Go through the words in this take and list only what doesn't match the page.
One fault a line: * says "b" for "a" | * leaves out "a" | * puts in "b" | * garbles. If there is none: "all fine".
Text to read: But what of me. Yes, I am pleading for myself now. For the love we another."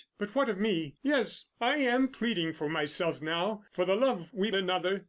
all fine